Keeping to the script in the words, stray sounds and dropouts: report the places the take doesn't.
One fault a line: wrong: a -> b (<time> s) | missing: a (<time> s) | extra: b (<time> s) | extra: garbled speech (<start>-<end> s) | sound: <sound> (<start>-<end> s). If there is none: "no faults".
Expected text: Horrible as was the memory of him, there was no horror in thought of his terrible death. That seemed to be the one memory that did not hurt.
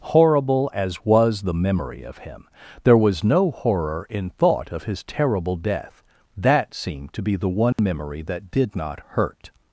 sound: dropout (7.7-7.8 s)